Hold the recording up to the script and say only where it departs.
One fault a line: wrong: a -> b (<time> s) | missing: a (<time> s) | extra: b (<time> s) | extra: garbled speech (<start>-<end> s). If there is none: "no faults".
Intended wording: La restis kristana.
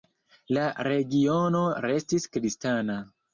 extra: regiono (0.9 s)